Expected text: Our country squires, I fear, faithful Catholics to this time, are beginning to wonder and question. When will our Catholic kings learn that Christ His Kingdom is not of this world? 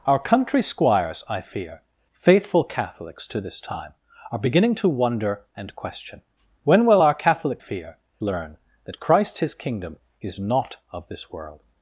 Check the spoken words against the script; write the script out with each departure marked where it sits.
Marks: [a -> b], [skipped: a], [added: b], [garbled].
Our country squires, I fear, faithful Catholics to this time, are beginning to wonder and question. When will our Catholic [kings -> fear] learn that Christ His Kingdom is not of this world?